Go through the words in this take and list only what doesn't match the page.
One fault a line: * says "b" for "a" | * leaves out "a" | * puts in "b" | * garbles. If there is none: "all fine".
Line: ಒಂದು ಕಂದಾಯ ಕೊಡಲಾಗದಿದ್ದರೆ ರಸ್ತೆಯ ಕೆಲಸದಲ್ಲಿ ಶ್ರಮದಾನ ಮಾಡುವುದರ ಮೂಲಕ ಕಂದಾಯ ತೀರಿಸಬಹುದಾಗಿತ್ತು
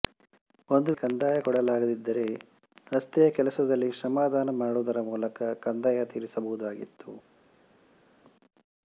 all fine